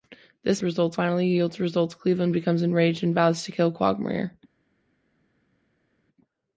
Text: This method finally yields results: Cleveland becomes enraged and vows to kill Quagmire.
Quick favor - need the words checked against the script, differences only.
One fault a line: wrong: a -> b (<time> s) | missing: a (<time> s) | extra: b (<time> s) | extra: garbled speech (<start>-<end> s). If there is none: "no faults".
wrong: method -> results (0.6 s)